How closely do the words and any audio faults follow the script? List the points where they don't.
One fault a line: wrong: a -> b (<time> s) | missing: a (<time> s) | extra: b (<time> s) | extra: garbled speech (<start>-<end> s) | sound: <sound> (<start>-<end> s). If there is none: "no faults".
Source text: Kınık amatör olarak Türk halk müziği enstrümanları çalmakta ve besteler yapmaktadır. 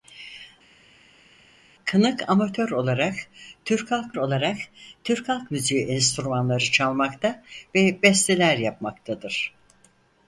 extra: olarak Türk halk (4.2 s)